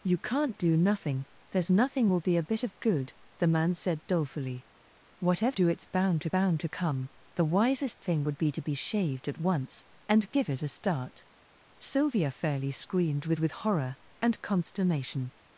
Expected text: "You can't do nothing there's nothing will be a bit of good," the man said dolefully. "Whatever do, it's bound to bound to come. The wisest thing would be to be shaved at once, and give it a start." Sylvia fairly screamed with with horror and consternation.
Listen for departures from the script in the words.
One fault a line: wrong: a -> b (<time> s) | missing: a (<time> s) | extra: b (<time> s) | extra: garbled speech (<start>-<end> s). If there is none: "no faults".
no faults